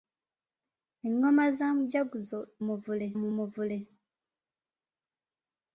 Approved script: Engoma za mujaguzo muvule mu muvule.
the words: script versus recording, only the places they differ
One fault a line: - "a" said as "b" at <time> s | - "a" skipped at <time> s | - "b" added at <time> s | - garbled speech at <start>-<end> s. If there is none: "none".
none